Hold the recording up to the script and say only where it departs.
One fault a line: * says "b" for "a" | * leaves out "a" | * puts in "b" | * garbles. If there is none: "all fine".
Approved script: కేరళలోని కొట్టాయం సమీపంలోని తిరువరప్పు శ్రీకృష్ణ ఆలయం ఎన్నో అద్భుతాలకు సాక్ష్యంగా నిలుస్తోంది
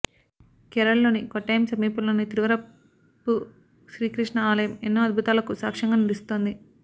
all fine